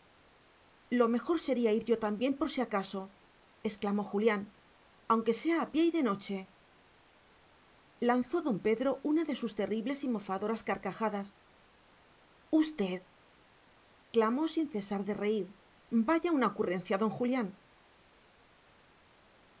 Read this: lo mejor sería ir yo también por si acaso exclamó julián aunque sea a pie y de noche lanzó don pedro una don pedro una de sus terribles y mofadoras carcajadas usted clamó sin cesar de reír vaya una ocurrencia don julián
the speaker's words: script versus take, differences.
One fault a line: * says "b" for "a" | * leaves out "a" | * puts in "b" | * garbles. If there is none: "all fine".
* leaves out "don pedro una"